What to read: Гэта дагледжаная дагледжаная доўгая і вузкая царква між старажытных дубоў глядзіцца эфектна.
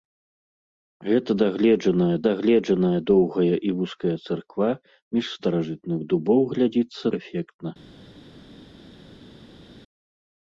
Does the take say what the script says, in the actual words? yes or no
yes